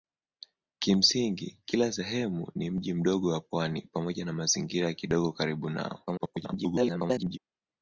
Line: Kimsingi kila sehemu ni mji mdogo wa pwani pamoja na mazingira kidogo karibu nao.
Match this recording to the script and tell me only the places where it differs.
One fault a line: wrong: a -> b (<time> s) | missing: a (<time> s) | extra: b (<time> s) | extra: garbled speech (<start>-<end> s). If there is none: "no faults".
extra: garbled speech (6.1-7.4 s)